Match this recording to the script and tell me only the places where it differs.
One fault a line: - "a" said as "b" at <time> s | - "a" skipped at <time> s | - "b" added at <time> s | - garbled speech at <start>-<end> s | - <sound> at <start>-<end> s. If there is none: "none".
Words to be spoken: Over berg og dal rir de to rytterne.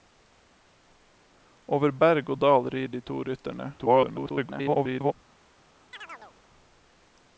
- garbled speech at 3.8-5.1 s
- chirp at 5.9-6.4 s